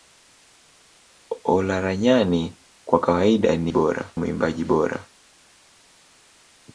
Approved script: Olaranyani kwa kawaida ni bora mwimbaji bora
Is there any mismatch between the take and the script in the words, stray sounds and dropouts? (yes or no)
no